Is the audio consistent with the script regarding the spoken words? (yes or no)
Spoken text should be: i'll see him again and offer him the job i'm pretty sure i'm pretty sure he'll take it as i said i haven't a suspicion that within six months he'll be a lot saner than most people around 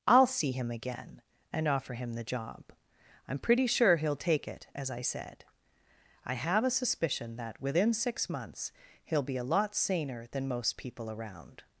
no